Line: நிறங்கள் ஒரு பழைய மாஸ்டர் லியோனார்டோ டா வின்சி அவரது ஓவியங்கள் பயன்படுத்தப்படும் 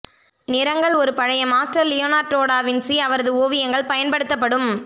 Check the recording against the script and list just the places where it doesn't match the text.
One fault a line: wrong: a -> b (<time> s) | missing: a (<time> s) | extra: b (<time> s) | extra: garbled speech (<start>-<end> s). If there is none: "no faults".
no faults